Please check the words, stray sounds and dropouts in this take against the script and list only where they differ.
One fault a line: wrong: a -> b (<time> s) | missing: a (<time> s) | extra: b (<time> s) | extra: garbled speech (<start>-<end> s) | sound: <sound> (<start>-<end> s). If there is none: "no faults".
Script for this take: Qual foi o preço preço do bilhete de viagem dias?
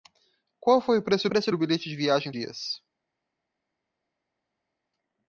no faults